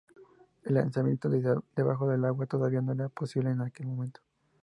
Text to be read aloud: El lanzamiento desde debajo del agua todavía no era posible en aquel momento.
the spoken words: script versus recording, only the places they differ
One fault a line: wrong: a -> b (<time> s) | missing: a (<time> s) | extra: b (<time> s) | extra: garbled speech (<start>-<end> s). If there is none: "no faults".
no faults